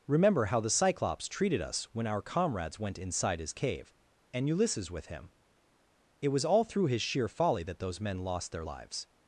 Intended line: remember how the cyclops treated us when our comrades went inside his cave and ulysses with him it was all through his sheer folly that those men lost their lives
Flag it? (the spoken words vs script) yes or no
no